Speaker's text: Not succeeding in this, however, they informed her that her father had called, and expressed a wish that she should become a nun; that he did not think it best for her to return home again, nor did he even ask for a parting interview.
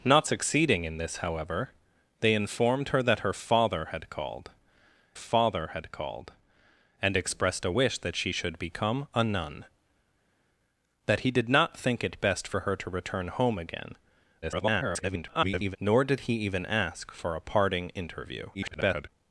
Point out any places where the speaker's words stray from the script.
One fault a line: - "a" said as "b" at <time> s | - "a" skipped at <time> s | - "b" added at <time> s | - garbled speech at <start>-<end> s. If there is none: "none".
- "father had called" added at 5.2 s
- garbled speech at 14.4-15.8 s
- garbled speech at 18.5-19.1 s